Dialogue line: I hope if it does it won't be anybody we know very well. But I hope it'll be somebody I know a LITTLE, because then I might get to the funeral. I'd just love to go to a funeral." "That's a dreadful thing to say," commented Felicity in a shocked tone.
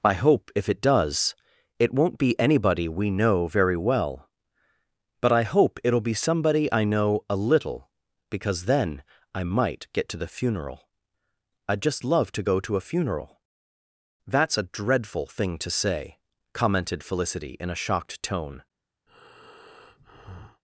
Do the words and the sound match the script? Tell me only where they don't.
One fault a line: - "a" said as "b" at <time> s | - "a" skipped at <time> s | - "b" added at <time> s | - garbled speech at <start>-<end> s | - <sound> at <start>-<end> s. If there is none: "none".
- breath at 19.1-20.6 s